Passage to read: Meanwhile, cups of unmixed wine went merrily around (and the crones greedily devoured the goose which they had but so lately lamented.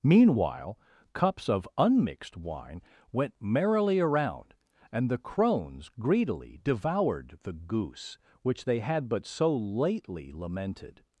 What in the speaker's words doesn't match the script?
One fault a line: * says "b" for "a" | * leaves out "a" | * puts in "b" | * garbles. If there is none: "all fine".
all fine